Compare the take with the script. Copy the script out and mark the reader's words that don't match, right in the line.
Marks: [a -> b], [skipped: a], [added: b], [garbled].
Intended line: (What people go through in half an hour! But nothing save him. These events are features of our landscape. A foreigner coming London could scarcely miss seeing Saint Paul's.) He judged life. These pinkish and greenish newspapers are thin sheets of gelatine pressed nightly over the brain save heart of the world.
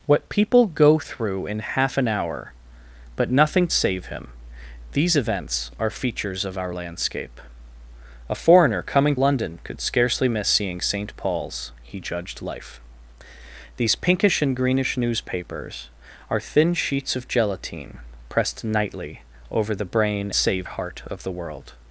(What people go through in half an hour! But nothing save him. These events are features of our landscape. A foreigner coming London could scarcely miss seeing Saint Paul's.) He judged life. These pinkish and greenish newspapers are thin sheets of gelatine pressed nightly over the brain save heart of the world.